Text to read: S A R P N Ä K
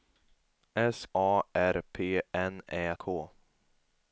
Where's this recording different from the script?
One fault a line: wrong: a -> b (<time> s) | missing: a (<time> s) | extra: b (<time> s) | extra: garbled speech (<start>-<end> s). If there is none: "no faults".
no faults